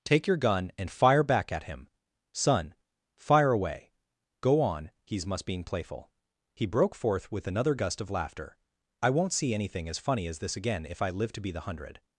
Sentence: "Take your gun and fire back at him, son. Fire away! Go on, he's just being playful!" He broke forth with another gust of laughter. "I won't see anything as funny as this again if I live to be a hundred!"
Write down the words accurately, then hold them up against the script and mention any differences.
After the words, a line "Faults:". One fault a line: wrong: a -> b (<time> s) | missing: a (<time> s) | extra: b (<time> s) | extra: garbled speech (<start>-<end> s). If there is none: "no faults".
"Take your gun and fire back at him, son. Fire away! Go on, he's must being playful!" He broke forth with another gust of laughter. "I won't see anything as funny as this again if I live to be the hundred!"
Faults:
wrong: just -> must (5.2 s)
wrong: a -> the (11.5 s)